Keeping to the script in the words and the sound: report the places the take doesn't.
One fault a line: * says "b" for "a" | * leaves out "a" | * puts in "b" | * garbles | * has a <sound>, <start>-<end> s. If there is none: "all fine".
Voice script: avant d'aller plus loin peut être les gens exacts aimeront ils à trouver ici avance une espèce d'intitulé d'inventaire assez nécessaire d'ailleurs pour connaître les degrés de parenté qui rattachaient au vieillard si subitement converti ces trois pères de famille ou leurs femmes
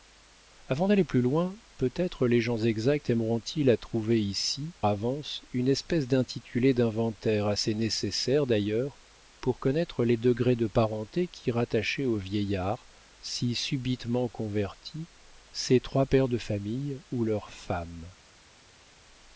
all fine